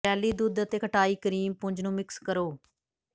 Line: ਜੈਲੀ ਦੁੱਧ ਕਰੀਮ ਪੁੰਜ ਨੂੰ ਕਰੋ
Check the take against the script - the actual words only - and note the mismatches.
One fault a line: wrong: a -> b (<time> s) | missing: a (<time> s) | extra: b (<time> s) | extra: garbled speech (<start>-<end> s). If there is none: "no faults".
extra: ਅਤੇ ਖਟਾਈ (0.6 s)
extra: ਮਿਕਸ (1.9 s)